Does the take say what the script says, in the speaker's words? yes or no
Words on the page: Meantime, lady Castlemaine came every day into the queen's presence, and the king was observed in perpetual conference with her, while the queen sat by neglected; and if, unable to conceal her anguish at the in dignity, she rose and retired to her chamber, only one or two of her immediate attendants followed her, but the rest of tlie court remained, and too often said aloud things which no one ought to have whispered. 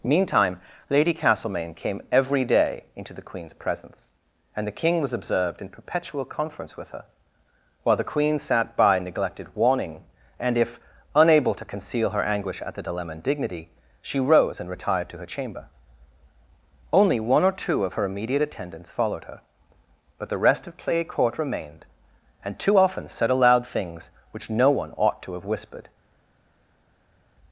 no